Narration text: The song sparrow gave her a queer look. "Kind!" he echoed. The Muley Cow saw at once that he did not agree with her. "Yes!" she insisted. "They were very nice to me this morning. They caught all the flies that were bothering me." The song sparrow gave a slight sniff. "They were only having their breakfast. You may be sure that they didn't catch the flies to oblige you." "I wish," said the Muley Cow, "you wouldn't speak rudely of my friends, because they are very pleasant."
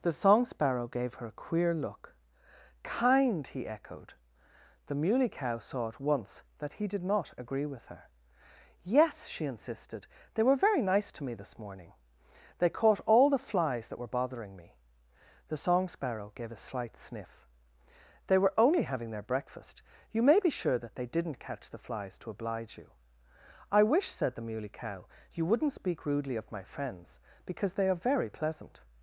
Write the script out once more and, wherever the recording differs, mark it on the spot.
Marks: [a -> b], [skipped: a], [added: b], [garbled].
The song sparrow gave her a queer look. "Kind!" he echoed. The Muley Cow saw at once that he did not agree with her. "Yes!" she insisted. "They were very nice to me this morning. They caught all the flies that were bothering me." The song sparrow gave a slight sniff. "They were only having their breakfast. You may be sure that they didn't catch the flies to oblige you." "I wish," said the Muley Cow, "you wouldn't speak rudely of my friends, because they are very pleasant."